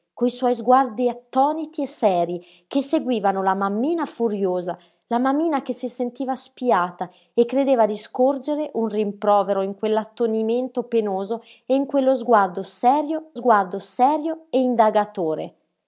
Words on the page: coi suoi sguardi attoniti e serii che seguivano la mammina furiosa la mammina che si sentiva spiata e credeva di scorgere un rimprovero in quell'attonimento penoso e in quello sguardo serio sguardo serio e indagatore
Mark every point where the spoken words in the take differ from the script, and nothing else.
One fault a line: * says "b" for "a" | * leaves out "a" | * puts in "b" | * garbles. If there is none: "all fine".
all fine